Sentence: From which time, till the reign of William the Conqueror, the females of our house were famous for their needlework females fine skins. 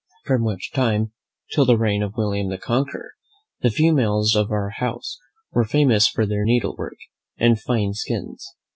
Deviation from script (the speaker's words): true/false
true